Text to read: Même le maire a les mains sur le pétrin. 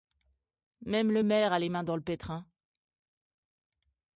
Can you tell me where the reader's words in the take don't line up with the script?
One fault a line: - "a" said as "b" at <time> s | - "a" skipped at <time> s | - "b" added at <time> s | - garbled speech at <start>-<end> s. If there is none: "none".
- "sur" said as "dans" at 1.8 s